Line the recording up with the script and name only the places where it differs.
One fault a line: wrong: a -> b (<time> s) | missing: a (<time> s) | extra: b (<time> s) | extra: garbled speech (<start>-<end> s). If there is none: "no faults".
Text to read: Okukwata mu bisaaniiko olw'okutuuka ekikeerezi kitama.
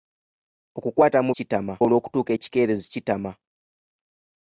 wrong: bisaaniiko -> kitama (1.4 s)